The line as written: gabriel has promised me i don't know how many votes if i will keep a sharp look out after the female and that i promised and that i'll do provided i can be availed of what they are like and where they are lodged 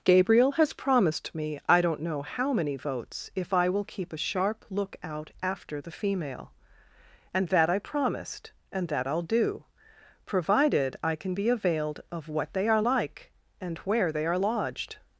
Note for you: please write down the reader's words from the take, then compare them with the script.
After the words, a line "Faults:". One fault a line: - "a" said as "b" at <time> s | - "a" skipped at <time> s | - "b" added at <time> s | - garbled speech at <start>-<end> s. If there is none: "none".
gabriel has promised me i don't know how many votes if i will keep a sharp look out after the female and that i promised and that i'll do provided i can be availed of what they are like and where they are lodged
Faults:
none